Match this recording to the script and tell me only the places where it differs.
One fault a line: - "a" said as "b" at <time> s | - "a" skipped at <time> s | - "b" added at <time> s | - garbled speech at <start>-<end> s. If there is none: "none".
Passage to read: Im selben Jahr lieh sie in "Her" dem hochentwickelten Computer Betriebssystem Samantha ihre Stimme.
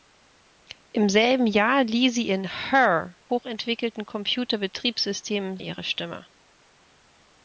- "dem" skipped at 3.1 s
- "Samantha" skipped at 5.6 s